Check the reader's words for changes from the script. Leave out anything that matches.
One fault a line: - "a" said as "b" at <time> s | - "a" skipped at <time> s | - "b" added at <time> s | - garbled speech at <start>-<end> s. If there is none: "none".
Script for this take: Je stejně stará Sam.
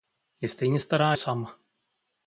none